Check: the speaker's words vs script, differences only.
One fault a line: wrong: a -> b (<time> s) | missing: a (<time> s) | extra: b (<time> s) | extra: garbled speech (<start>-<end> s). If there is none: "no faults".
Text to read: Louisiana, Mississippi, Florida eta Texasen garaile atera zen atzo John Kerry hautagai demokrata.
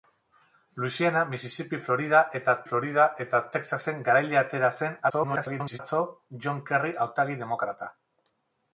extra: Florida eta (2.7 s)
extra: garbled speech (5.1-5.8 s)